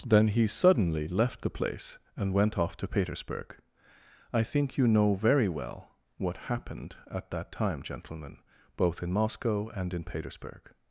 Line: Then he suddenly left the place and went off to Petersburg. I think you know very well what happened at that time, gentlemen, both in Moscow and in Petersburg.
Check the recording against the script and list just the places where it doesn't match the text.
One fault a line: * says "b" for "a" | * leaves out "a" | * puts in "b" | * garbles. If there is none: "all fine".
all fine